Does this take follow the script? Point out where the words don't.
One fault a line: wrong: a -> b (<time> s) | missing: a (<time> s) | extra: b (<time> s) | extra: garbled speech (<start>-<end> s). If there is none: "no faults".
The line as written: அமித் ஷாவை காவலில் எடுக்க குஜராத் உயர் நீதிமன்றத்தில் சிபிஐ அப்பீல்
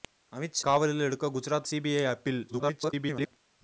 missing: ஷாவை (0.6 s)
missing: உயர் நீதிமன்றத்தில் (1.7 s)
extra: garbled speech (2.5-3.3 s)